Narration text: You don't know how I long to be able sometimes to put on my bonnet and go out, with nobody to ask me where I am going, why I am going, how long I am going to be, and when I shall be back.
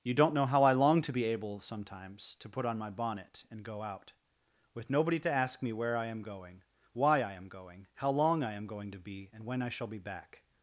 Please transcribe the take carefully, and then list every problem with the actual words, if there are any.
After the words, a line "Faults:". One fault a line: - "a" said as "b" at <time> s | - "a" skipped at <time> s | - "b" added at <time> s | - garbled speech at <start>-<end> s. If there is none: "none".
You don't know how I long to be able sometimes to put on my bonnet and go out, with nobody to ask me where I am going, why I am going, how long I am going to be, and when I shall be back.
Faults:
none